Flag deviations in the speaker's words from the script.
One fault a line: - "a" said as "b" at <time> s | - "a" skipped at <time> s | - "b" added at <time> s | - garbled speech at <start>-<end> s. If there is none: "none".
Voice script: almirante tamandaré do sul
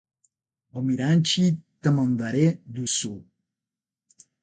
none